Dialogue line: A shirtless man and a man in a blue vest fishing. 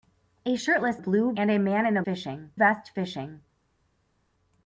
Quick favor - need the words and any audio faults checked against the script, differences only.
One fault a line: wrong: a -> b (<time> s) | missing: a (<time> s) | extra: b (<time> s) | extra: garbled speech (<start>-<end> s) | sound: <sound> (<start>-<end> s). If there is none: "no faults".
wrong: man -> blue (1.0 s)
wrong: blue -> fishing (2.0 s)